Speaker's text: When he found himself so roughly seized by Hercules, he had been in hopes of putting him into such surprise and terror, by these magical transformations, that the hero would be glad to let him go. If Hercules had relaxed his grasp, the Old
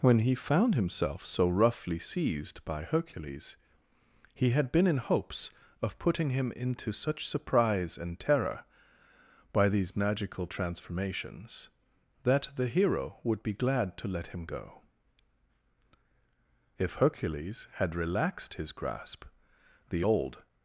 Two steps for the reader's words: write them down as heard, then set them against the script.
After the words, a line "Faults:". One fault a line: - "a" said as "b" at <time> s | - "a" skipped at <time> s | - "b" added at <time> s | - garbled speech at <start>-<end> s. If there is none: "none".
When he found himself so roughly seized by Hercules, he had been in hopes of putting him into such surprise and terror, by these magical transformations, that the hero would be glad to let him go. If Hercules had relaxed his grasp, the Old
Faults:
none